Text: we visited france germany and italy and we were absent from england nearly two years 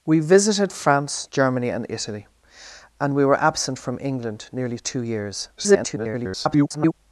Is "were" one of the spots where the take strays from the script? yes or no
no